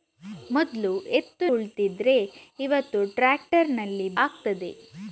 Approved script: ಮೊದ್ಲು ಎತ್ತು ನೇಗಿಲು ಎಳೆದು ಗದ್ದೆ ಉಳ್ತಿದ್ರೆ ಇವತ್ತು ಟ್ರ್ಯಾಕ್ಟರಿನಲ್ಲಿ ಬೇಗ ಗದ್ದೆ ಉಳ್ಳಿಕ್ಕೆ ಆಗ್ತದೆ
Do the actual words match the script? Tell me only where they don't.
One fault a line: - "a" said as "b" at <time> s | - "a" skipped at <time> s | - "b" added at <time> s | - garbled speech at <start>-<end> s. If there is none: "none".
- "ನೇಗಿಲು ಎಳೆದು ಗದ್ದೆ" skipped at 1.5 s
- "ಬೇಗ ಗದ್ದೆ ಉಳ್ಳಿಕ್ಕೆ" skipped at 4.1 s